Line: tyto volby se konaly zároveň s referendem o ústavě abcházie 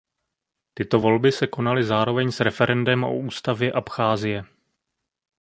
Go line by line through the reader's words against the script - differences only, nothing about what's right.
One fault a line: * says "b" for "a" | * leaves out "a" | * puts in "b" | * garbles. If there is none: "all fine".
all fine